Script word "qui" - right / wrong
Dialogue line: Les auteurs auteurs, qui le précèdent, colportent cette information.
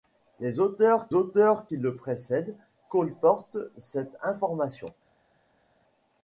right